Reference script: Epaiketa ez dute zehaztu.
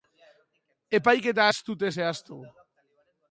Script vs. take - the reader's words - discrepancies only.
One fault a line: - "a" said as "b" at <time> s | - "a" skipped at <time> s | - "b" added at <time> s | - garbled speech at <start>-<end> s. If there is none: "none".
none